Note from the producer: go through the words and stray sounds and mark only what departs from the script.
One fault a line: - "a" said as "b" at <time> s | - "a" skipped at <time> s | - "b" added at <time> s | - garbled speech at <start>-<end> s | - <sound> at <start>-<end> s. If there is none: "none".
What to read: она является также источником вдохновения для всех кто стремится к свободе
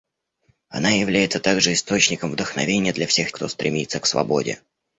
none